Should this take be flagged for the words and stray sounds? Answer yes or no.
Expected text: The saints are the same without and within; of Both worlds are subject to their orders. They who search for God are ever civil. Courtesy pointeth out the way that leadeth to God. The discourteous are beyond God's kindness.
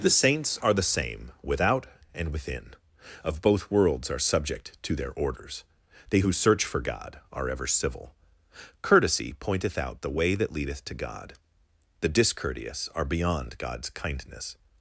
no